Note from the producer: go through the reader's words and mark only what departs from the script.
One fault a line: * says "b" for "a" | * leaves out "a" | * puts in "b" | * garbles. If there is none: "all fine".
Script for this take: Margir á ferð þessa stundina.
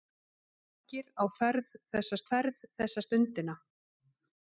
* puts in "ferð þessa"